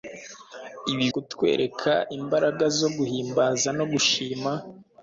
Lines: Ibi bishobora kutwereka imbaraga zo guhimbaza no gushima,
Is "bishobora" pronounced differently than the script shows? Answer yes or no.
yes